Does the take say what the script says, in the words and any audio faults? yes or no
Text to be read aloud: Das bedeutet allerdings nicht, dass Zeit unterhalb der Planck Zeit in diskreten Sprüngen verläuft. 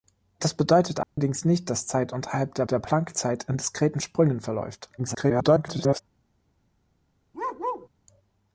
no